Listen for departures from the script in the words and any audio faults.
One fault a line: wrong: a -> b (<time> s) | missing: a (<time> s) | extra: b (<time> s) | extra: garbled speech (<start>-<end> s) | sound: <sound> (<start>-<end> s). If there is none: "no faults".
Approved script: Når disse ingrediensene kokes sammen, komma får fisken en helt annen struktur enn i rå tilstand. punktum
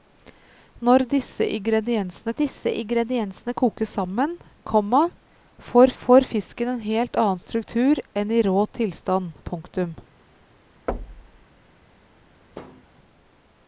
extra: disse ingrediensene (2.4 s)
extra: får (6.0 s)
sound: thud (10.9-11.5 s)
sound: thud (12.5-12.9 s)